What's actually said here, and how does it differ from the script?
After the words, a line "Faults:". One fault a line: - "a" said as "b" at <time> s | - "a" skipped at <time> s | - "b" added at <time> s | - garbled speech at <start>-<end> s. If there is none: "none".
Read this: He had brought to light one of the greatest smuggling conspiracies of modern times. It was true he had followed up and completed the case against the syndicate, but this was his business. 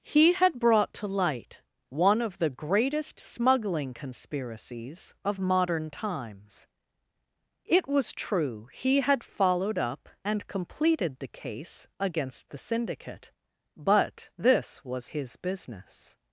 He had brought to light one of the greatest smuggling conspiracies of modern times. It was true he had followed up and completed the case against the syndicate, but this was his business.
Faults:
none